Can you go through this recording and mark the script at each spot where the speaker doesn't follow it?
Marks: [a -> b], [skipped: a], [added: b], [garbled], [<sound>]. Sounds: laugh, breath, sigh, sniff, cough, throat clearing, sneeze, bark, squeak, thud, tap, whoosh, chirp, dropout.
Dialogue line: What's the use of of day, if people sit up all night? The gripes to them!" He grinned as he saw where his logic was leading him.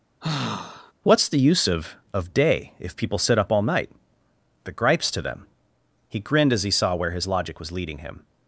[sigh] What's the use of of day, if people sit up all night? The gripes to them!" He grinned as he saw where his logic was leading him.